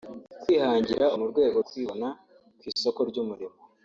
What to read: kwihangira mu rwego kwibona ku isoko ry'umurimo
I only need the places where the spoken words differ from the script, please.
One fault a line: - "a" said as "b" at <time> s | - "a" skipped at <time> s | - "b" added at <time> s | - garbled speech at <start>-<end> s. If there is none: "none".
none